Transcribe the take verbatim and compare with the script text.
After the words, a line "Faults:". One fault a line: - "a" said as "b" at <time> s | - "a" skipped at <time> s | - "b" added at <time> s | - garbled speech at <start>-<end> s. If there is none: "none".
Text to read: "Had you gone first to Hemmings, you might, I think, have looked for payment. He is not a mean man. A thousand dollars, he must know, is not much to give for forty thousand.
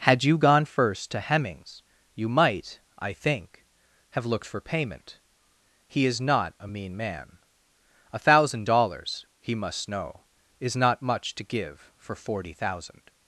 "Had you gone first to Hemmings, you might, I think, have looked for payment. He is not a mean man. A thousand dollars, he must know, is not much to give for forty thousand.
Faults:
none